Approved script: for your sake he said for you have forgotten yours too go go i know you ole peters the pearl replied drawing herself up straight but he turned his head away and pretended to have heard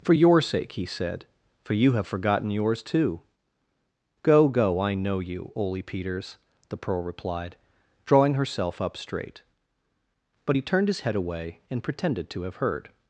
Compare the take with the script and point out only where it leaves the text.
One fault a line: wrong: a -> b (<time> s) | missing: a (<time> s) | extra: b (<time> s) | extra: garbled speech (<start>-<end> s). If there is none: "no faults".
no faults